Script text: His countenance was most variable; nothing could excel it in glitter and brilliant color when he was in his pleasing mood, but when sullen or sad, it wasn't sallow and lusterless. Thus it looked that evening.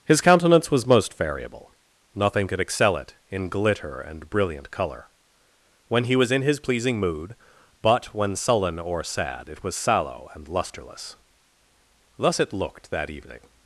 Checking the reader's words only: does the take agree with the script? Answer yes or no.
no